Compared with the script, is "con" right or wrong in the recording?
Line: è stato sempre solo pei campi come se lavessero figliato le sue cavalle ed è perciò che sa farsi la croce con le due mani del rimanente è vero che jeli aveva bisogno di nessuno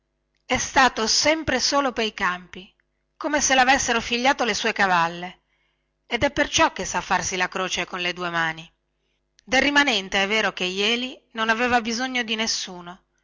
right